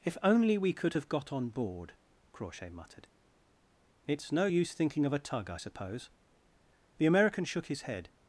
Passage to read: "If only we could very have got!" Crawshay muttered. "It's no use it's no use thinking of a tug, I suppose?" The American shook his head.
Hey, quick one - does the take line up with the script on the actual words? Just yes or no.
no